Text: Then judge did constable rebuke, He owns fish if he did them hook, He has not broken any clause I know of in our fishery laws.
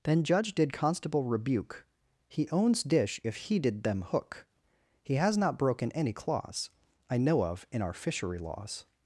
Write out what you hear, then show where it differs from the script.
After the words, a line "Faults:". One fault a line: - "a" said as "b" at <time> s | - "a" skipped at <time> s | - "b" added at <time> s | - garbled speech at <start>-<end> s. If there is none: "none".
Then judge did constable rebuke, He owns dish if he did them hook, He has not broken any clause I know of in our fishery laws.
Faults:
- "fish" said as "dish" at 2.8 s